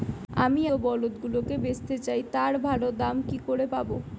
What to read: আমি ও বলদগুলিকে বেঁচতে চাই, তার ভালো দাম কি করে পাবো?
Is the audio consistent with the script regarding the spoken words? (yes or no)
yes